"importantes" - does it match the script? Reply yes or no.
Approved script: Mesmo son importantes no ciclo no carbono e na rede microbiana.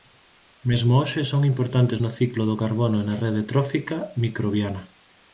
yes